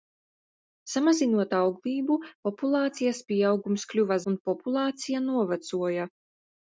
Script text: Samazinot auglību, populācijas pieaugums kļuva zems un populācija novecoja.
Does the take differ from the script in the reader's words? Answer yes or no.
yes